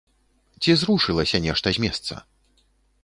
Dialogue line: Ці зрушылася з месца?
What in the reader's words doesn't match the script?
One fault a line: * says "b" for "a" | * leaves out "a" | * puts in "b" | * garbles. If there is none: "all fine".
* puts in "нешта"